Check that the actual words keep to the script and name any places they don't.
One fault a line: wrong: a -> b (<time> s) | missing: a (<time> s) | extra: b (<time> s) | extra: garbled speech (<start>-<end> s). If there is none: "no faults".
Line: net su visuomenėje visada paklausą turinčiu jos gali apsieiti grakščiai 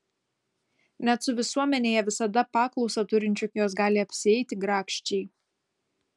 no faults